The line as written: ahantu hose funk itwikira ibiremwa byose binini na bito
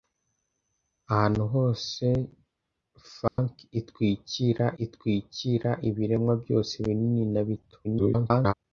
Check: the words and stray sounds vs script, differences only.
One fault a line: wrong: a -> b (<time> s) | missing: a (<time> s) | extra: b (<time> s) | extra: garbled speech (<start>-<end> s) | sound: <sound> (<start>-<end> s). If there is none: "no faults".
sound: dropout (3.3-3.4 s)
extra: itwikira (4.8 s)
extra: garbled speech (7.8-8.5 s)